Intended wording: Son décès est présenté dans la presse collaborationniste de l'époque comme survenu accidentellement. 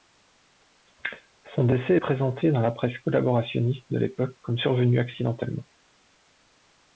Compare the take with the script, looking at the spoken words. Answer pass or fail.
pass